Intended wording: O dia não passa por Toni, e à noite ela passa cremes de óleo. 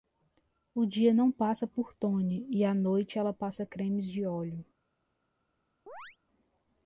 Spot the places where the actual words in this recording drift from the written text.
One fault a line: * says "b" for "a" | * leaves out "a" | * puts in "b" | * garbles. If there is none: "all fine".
all fine